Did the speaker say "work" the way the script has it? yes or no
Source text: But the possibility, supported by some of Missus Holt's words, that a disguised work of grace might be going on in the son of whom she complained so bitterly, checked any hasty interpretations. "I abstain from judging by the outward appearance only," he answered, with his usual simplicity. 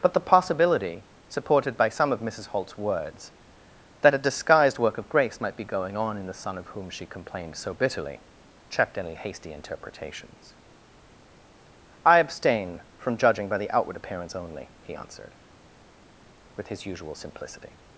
yes